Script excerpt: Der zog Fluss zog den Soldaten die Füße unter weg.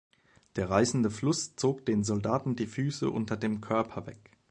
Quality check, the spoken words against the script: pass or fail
fail